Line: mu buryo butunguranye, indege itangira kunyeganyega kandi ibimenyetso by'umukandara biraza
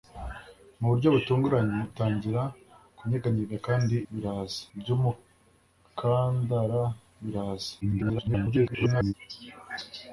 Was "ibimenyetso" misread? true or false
true